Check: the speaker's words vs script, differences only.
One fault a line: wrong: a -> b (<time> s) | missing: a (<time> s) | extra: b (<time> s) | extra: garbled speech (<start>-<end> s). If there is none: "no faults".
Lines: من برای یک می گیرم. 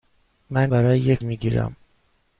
no faults